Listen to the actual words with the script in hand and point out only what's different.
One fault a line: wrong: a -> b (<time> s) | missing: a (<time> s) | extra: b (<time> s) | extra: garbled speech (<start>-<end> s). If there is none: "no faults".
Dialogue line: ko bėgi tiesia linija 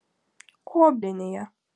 missing: bėgi tiesia (0.9 s)